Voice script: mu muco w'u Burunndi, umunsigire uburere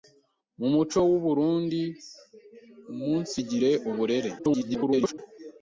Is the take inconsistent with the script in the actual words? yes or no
yes